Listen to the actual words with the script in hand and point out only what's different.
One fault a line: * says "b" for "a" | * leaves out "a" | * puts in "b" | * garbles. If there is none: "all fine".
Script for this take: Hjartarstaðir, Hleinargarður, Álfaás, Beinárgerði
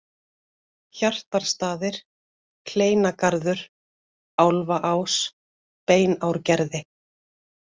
all fine